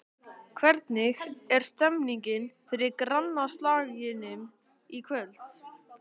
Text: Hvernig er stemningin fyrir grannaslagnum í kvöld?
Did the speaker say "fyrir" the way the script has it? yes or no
yes